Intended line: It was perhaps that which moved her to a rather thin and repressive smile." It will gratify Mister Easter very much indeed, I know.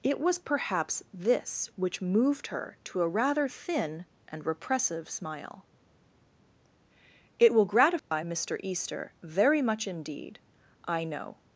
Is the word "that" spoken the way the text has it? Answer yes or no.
no